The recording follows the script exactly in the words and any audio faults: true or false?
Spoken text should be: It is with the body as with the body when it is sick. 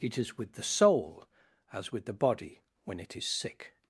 false